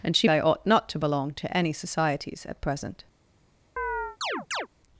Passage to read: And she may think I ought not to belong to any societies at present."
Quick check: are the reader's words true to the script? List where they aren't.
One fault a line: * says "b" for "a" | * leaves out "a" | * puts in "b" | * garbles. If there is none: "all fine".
* leaves out "may think"